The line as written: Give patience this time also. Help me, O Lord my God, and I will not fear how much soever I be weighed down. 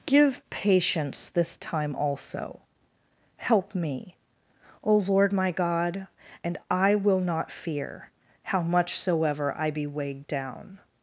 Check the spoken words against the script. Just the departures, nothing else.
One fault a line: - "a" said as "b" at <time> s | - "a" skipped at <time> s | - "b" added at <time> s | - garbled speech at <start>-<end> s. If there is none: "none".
none